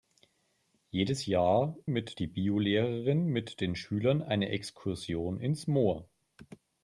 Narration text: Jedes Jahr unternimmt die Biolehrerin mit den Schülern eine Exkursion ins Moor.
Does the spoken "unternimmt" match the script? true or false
false